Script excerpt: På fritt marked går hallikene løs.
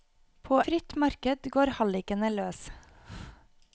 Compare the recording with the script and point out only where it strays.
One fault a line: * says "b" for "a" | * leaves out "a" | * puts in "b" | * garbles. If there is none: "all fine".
all fine